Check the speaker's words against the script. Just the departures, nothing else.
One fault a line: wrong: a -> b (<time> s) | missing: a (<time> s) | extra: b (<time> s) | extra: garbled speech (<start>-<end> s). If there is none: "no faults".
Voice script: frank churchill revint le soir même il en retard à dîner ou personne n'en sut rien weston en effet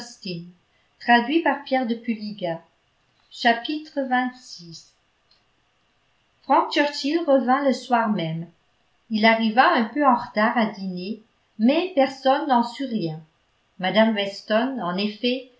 extra: arriva un peu (9.2 s)
wrong: ou -> mais (11.6 s)
extra: mme (13.8 s)